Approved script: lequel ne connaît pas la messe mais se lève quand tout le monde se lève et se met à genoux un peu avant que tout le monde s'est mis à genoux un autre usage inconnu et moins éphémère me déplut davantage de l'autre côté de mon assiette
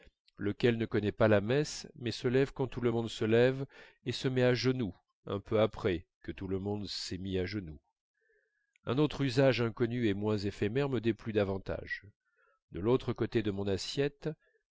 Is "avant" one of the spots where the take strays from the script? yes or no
yes